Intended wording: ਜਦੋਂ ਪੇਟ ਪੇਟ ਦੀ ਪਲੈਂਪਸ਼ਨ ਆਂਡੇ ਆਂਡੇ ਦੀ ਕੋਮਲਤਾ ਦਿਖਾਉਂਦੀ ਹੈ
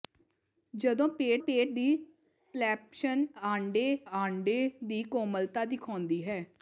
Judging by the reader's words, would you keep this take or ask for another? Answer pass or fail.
pass